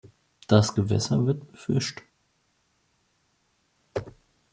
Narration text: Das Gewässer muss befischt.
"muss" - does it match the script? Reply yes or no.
no